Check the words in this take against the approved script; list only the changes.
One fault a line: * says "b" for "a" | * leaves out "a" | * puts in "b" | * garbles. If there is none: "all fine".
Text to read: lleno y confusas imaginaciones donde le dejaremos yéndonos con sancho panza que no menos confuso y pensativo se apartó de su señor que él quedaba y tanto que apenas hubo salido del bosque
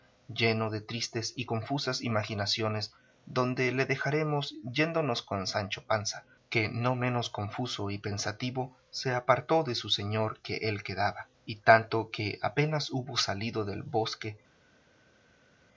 * puts in "de tristes"